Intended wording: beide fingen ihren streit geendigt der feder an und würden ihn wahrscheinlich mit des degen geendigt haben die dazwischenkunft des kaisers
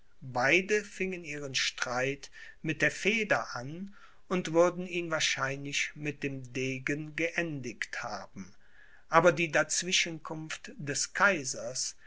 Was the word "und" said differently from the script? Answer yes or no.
no